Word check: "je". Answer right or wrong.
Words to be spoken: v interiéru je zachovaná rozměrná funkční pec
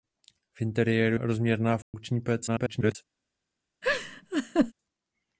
wrong